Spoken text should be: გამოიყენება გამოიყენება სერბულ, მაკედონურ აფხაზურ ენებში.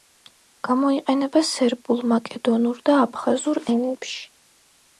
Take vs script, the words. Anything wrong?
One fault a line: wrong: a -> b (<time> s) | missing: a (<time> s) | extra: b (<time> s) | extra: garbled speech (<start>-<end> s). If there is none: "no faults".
missing: გამოიყენება (1.4 s)
extra: და (2.9 s)